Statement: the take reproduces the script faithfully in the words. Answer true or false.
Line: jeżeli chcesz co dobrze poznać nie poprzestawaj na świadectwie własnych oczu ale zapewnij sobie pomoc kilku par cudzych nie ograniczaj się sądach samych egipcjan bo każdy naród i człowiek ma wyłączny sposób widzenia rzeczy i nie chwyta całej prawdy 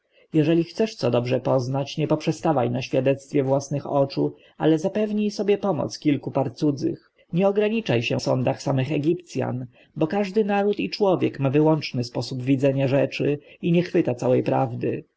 true